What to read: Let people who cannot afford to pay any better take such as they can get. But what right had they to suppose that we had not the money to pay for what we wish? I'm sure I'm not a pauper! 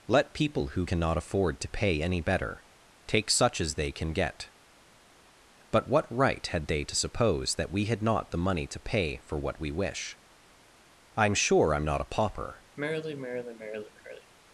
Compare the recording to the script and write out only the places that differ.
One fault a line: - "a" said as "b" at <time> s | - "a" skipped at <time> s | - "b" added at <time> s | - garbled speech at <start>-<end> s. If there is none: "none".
none